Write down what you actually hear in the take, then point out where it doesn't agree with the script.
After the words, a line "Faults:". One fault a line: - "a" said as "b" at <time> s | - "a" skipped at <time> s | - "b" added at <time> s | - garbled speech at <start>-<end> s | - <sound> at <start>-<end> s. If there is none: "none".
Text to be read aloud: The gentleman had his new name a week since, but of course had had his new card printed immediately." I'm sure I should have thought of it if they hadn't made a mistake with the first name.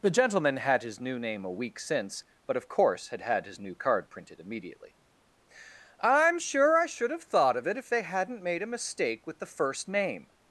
The gentleman had his new name a week since, but of course had had his new card printed immediately." I'm sure I should have thought of it if they hadn't made a mistake with the first name.
Faults:
none